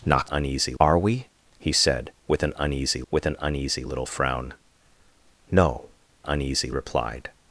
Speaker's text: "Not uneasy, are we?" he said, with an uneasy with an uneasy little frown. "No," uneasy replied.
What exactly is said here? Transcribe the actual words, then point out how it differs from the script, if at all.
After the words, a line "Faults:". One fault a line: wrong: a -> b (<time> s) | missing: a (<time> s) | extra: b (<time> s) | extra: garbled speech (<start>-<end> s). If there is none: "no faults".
"Not uneasy, are we?" he said, with an uneasy with an uneasy little frown. "No," uneasy replied.
Faults:
no faults